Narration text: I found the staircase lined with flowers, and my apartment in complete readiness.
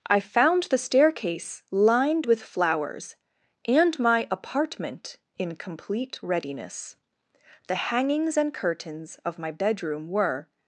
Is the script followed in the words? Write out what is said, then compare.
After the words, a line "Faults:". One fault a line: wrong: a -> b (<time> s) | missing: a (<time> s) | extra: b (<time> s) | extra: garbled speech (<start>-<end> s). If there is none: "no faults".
I found the staircase lined with flowers, and my apartment in complete readiness. The hangings and curtains of my bedroom were
Faults:
extra: The hangings and curtains of my bedroom were (7.7 s)